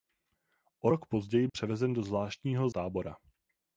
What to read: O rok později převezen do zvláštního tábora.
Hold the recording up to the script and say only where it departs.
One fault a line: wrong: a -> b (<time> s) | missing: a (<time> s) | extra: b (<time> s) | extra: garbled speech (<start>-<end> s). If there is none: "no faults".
no faults